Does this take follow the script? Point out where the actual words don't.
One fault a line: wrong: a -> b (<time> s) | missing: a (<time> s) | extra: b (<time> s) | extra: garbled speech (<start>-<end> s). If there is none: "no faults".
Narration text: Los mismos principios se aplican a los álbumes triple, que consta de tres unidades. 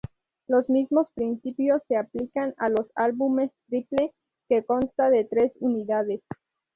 no faults